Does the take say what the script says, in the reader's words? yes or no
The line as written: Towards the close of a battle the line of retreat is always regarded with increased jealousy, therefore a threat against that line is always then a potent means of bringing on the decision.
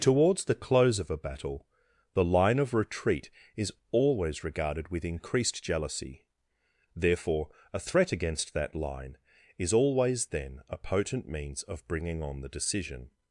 yes